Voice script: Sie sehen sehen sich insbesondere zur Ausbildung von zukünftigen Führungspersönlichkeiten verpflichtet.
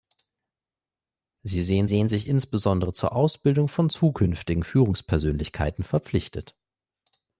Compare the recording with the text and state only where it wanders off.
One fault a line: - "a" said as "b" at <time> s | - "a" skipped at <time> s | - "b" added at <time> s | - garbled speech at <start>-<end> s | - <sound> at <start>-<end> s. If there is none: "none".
none